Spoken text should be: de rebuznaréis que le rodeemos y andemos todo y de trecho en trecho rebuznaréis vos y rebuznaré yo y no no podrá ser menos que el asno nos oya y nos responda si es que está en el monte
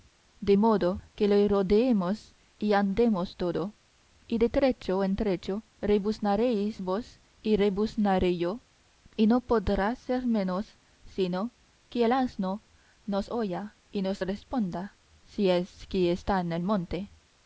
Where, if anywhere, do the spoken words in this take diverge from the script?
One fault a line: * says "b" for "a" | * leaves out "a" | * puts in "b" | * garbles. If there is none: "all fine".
* says "modo" for "rebuznaréis"
* leaves out "no"
* puts in "sino"